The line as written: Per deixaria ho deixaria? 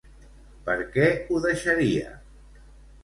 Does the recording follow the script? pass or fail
fail